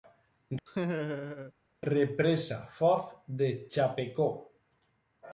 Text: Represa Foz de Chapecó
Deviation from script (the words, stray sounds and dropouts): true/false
true